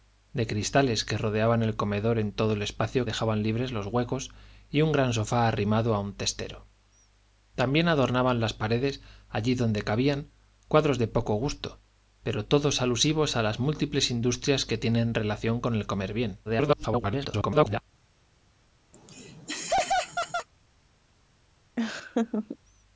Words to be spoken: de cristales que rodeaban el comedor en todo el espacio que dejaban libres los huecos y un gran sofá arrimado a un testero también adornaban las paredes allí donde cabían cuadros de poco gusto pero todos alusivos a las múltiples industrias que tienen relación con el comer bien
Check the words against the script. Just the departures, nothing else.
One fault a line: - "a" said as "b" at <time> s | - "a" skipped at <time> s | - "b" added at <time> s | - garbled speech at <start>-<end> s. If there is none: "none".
- "que" skipped at 3.0 s
- garbled speech at 16.5-17.8 s